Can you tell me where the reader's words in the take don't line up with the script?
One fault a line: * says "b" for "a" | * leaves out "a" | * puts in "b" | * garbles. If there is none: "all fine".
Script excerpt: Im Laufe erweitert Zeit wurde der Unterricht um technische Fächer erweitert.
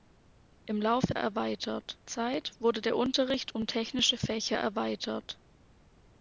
all fine